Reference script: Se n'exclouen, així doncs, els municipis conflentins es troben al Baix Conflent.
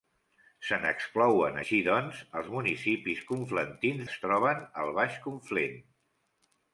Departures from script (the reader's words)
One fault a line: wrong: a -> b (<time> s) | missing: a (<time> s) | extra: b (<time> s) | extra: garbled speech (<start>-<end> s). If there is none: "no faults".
no faults